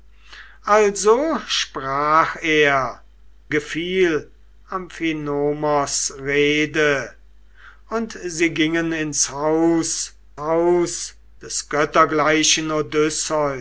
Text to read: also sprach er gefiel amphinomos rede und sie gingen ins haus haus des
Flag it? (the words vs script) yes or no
no